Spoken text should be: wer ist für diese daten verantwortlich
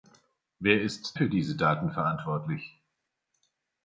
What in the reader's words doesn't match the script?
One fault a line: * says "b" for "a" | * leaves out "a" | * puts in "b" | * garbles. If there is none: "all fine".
all fine